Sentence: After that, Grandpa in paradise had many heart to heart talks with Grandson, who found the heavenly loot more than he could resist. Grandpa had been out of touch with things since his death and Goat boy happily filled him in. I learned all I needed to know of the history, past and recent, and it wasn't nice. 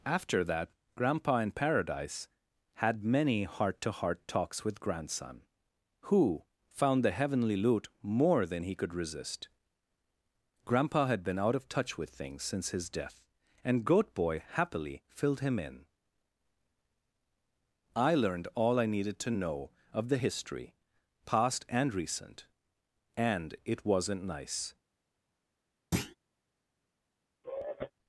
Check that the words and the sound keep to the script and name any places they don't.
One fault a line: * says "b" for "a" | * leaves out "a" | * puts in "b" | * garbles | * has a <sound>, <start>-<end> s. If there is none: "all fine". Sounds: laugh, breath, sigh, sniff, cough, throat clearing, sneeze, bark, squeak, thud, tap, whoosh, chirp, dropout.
* has a thud, 25.9-26.2 s
* has a sigh, 27.4-27.9 s